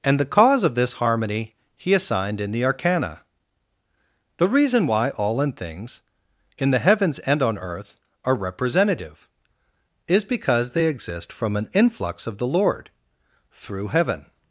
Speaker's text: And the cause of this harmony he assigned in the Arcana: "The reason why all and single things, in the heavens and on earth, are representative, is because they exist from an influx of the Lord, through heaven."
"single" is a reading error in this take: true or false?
true